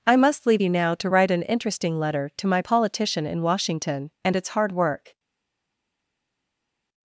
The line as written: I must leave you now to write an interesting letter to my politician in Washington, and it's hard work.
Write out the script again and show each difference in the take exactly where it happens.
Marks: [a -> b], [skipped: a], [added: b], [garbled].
I must leave you now to write an interesting letter to my politician in Washington, and it's hard work.